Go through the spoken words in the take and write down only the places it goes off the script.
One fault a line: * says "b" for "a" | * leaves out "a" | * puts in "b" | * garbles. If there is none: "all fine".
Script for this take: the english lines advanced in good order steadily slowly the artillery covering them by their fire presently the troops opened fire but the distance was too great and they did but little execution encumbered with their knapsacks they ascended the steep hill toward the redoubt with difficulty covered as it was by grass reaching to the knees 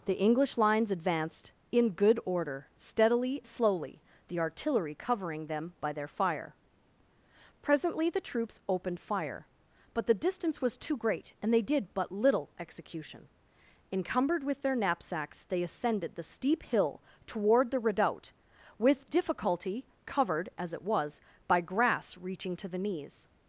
all fine